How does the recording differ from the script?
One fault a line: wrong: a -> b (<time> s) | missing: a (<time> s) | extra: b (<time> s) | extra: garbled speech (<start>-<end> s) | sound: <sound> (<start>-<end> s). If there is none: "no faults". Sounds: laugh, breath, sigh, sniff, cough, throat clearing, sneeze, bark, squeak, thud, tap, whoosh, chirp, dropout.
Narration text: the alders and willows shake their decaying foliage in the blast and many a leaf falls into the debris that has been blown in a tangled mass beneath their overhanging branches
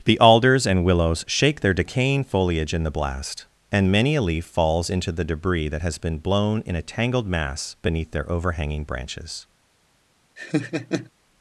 sound: laugh (10.4-11.1 s)